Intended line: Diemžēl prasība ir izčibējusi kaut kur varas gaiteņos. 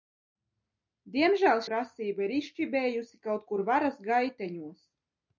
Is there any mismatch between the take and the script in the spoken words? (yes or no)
no